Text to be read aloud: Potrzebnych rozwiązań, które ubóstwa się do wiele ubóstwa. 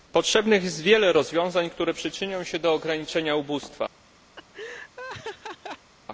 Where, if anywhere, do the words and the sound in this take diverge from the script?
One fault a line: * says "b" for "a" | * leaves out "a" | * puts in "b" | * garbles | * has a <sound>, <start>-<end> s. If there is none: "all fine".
* puts in "jest wiele"
* says "przyczynią" for "ubóstwa"
* says "ograniczenia" for "wiele"
* has a laugh, 4.4-5.9 s